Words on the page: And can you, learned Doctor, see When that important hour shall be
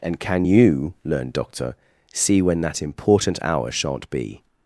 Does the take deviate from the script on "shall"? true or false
true